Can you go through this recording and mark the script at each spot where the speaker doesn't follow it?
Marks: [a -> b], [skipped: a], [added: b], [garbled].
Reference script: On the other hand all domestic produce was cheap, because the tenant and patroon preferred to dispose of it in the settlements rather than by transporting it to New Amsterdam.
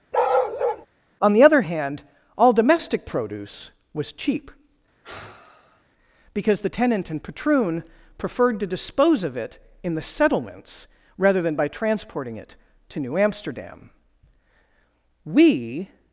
On the other hand all domestic produce was cheap, because the tenant and patroon preferred to dispose of it in the settlements rather than by transporting it to New Amsterdam. [added: We]